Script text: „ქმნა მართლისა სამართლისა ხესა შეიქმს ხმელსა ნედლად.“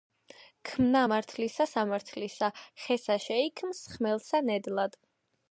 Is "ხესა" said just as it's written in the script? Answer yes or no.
yes